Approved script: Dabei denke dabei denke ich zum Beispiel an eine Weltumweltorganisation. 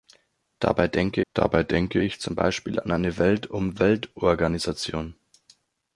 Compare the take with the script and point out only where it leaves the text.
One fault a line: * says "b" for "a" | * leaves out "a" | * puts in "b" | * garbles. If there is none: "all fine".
all fine